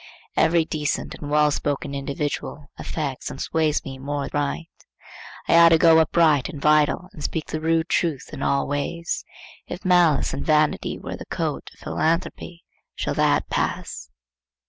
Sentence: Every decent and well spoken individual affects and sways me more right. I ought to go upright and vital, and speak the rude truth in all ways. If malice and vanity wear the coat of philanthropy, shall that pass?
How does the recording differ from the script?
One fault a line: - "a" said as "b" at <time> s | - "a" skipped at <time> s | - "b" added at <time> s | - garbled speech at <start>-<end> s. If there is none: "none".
none